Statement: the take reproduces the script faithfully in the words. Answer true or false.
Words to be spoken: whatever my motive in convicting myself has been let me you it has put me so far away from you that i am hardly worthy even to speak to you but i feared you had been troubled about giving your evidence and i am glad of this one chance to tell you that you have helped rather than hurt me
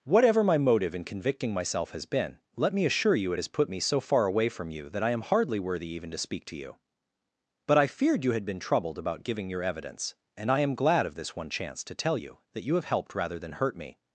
false